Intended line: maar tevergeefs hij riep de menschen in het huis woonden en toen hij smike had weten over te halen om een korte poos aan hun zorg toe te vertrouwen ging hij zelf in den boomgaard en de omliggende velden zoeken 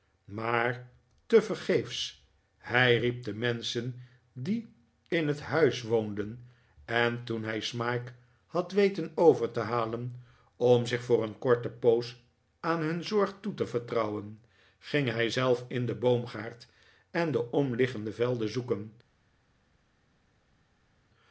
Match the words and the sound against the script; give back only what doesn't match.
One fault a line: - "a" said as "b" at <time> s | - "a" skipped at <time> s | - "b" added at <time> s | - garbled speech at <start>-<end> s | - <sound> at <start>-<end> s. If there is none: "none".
- "die" added at 4.3 s
- "zich voor" added at 10.9 s